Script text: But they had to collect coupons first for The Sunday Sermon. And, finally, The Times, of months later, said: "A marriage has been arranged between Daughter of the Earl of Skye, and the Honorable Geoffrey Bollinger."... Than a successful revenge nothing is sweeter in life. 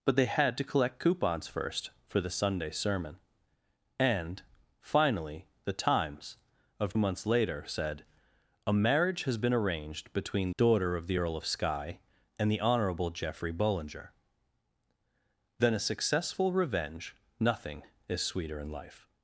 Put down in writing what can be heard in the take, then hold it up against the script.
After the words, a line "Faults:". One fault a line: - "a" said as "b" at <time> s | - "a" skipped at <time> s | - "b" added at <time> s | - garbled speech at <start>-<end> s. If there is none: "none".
But they had to collect coupons first for The Sunday Sermon. And, finally, The Times, of months later, said: "A marriage has been arranged between Daughter of the Earl of Skye, and the Honorable Geoffrey Bollinger."... Than a successful revenge nothing is sweeter in life.
Faults:
none